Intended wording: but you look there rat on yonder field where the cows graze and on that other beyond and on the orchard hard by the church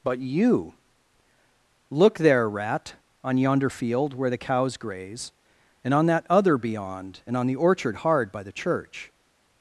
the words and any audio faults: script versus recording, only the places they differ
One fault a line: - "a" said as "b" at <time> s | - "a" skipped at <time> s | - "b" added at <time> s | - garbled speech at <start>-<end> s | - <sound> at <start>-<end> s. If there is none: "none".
none